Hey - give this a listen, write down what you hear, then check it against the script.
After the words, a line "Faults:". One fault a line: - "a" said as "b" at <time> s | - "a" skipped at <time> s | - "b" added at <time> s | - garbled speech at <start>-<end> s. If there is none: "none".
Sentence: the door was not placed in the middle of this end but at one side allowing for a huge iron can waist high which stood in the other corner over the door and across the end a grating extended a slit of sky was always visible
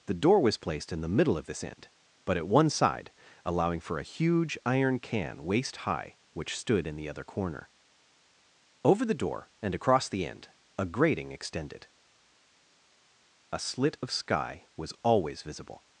the door was placed in the middle of this end but at one side allowing for a huge iron can waist high which stood in the other corner over the door and across the end a grating extended a slit of sky was always visible
Faults:
- "not" skipped at 0.6 s